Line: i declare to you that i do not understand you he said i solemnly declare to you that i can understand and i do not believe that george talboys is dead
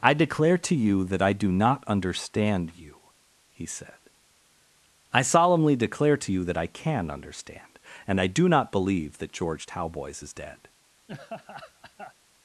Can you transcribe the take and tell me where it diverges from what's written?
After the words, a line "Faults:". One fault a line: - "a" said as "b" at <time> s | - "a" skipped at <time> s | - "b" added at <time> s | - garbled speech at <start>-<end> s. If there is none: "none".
i declare to you that i do not understand you he said i solemnly declare to you that i can understand and i do not believe that george talboys is dead
Faults:
none